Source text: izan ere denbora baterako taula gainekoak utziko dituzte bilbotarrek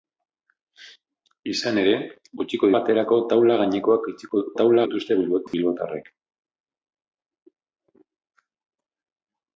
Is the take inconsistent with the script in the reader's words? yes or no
yes